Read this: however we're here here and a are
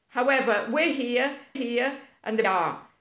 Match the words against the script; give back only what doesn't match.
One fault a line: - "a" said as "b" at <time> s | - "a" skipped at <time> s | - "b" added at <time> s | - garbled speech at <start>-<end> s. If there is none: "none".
none